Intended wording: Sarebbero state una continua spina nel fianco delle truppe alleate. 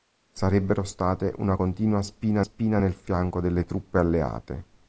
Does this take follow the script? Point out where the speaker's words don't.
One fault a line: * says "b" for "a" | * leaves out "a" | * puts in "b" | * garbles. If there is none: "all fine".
* puts in "spina"